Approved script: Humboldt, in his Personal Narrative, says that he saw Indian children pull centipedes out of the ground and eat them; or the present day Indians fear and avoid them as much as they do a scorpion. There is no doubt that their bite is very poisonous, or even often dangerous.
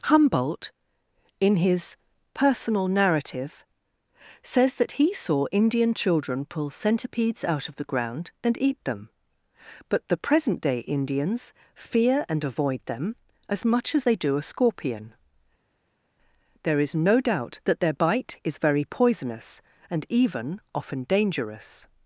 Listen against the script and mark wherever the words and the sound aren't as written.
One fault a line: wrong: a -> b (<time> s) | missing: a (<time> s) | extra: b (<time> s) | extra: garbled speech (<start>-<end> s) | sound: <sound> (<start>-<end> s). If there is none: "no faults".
wrong: or -> but (9.9 s)
wrong: or -> and (19.9 s)